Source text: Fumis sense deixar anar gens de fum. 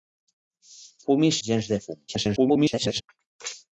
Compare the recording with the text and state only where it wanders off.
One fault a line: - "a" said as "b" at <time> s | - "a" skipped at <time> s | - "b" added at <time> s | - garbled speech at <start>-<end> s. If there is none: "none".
- "sense deixar anar" skipped at 1.4 s
- garbled speech at 2.1-3.0 s